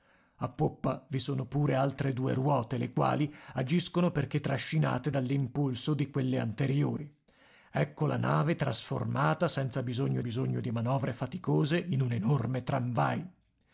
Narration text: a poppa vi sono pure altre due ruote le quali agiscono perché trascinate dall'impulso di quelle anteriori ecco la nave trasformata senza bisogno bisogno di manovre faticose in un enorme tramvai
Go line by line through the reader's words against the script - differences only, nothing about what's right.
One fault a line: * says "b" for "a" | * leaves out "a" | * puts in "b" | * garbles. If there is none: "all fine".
all fine